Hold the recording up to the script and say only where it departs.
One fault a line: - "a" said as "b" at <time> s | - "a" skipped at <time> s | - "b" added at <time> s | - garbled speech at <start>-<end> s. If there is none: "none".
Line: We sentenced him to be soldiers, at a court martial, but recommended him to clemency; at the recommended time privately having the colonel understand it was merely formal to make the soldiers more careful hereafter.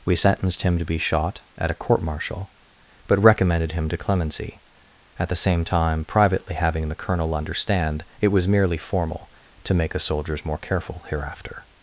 - "soldiers" said as "shot" at 1.0 s
- "recommended" said as "same" at 5.3 s